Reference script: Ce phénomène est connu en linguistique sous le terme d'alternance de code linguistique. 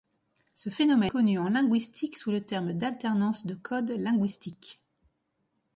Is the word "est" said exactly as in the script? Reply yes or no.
no